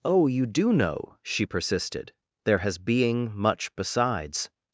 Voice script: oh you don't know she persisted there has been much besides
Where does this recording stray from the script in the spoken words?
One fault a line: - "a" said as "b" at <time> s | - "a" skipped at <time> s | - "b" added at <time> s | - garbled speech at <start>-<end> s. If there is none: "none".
- "don't" said as "do" at 0.5 s
- "been" said as "being" at 2.8 s